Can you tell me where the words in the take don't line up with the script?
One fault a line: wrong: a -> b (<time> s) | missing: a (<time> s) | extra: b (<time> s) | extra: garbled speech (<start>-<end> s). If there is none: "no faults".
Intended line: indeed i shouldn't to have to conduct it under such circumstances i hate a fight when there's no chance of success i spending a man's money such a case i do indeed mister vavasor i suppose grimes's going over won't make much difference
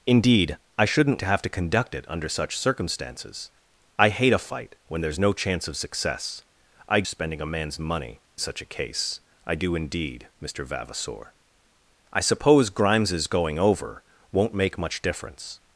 no faults